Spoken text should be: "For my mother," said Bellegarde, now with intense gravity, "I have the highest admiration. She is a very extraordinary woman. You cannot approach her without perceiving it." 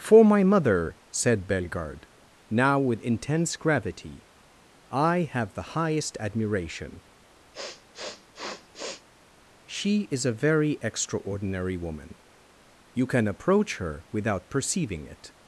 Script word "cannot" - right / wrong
wrong